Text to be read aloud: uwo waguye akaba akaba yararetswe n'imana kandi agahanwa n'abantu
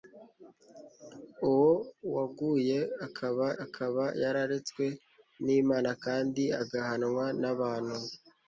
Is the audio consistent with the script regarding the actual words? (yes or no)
yes